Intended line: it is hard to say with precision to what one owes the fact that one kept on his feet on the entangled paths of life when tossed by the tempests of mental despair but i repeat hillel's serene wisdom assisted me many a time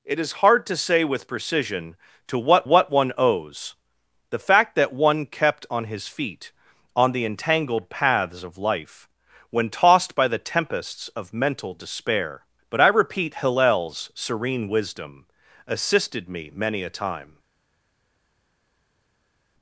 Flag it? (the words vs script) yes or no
yes